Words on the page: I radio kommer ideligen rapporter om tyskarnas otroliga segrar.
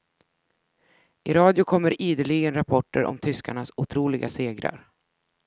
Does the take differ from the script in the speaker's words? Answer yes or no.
no